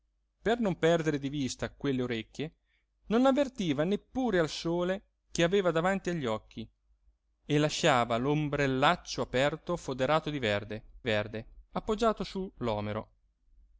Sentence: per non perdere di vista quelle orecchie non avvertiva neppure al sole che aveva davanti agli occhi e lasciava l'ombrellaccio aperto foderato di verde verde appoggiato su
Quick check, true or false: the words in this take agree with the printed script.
true